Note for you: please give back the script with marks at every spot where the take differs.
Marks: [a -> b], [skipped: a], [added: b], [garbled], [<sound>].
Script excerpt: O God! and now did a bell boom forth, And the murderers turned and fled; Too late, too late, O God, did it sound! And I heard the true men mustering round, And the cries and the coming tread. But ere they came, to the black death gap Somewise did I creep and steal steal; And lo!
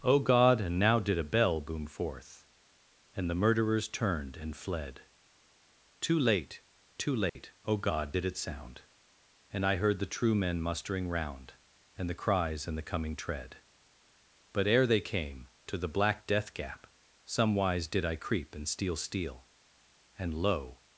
O God! and now did a bell boom forth, And the murderers turned and fled; Too late, too late, [dropout] O God, did it sound! And I heard the true men mustering round, And the cries and the coming tread. But ere they came, to the black death gap Somewise did I creep and steal steal; And lo!